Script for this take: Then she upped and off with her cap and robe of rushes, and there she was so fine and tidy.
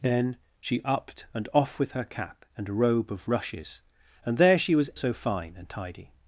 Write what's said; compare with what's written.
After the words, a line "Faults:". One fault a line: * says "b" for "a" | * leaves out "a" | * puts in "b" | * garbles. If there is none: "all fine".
Then she upped and off with her cap and robe of rushes, and there she was so fine and tidy.
Faults:
all fine